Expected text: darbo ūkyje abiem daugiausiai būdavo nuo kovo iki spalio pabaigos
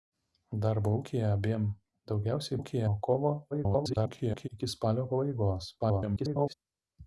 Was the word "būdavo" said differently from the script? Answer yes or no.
yes